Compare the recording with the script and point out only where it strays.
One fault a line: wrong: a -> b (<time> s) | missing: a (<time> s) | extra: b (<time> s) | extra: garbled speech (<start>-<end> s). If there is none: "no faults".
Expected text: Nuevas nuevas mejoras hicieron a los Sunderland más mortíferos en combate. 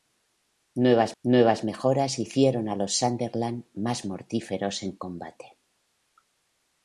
no faults